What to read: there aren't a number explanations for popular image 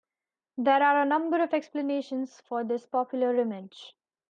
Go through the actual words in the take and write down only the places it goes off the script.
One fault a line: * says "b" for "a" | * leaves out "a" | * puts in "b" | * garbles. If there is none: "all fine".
* says "are" for "aren't"
* puts in "of"
* puts in "this"